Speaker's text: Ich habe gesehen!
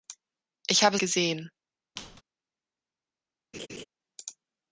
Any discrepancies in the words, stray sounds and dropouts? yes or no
yes